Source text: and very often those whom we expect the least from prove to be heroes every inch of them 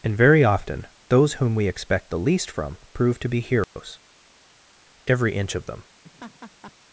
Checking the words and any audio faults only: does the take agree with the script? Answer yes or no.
no